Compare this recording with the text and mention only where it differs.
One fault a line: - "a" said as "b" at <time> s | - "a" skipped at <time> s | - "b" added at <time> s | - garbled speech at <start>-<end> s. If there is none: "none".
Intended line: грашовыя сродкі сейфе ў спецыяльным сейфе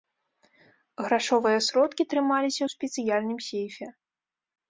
- "сейфе" said as "трымаліся" at 2.1 s